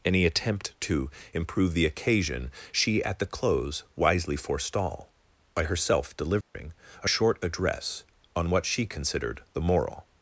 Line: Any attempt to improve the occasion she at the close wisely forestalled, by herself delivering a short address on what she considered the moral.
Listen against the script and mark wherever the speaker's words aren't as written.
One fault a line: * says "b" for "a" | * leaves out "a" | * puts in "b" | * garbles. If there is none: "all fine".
* says "forestall" for "forestalled"